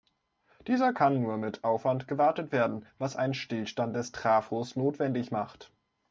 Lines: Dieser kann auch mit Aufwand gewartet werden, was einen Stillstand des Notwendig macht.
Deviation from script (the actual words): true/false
true